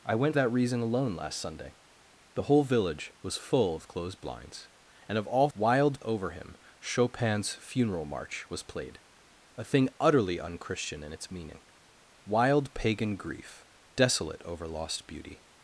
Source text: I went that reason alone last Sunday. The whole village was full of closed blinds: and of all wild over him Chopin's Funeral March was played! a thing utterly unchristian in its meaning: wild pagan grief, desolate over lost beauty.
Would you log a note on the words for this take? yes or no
no